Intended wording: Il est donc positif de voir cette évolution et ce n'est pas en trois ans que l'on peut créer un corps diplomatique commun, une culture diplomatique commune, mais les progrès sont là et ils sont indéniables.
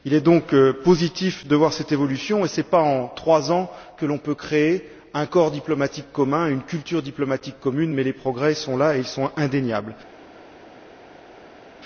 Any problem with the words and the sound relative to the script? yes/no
no